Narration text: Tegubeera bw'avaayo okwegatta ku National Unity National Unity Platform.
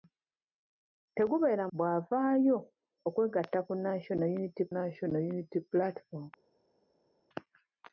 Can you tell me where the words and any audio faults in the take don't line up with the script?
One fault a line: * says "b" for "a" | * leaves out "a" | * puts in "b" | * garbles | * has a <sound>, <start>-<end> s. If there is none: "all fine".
all fine